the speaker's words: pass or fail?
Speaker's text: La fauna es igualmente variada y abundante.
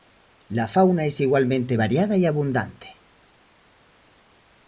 pass